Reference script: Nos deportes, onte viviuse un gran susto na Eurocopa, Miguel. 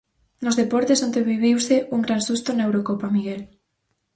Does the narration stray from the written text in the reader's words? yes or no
no